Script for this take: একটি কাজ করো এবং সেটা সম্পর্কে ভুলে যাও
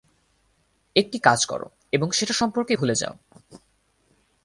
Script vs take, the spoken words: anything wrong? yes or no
no